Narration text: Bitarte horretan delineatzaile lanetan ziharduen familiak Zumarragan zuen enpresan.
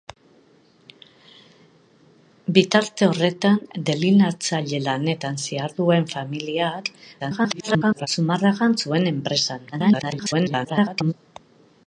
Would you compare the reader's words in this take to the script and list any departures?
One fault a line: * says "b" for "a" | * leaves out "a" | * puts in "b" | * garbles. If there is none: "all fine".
* garbles
* garbles